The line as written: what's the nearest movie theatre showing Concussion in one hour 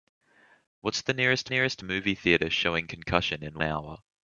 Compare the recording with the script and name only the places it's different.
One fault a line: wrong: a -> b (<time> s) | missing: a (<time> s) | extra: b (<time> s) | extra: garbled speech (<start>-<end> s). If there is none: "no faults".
extra: nearest (1.5 s)
missing: one (3.6 s)